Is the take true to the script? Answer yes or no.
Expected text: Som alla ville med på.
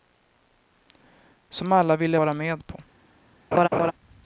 no